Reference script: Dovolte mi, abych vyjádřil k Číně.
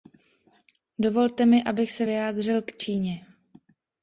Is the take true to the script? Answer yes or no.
no